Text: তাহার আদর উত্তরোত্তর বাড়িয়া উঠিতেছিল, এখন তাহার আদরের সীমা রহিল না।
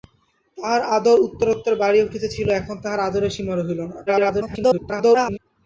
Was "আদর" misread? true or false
false